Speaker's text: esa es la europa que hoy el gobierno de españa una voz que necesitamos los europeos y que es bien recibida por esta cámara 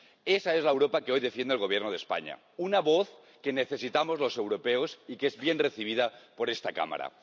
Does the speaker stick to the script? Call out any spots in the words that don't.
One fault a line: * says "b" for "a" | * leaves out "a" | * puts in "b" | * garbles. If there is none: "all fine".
* puts in "defiende"